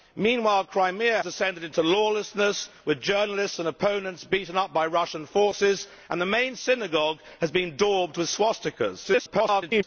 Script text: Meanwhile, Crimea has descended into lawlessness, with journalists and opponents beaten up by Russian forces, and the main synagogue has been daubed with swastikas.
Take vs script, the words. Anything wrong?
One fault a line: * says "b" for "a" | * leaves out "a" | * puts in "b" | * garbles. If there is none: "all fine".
* leaves out "has"
* garbles